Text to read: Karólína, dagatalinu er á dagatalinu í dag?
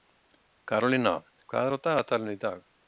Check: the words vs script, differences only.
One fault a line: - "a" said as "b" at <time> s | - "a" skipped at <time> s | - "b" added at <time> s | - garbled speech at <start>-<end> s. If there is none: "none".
- "dagatalinu" said as "hvað" at 1.5 s